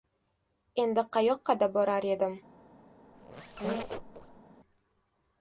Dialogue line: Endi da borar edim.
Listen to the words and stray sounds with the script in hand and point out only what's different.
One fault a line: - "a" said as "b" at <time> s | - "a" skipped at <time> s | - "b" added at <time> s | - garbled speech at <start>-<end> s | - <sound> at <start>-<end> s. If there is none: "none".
- "qayoqqa" added at 1.2 s
- squeak at 3.1-4.4 s